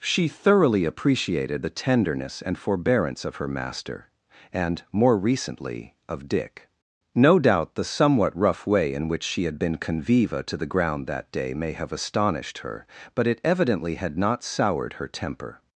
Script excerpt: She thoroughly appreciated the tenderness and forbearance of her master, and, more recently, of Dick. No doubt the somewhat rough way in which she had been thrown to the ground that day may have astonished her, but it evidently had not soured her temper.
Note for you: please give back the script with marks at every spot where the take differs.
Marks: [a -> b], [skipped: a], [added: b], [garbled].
She thoroughly appreciated the tenderness and forbearance of her master, and, more recently, of Dick. No doubt the somewhat rough way in which she had been [thrown -> conviva] to the ground that day may have astonished her, but it evidently had not soured her temper.